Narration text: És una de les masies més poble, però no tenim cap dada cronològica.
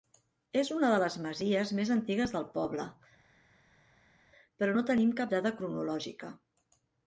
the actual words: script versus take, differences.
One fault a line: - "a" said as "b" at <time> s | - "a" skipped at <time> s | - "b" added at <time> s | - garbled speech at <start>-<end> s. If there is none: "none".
- "antigues del" added at 1.9 s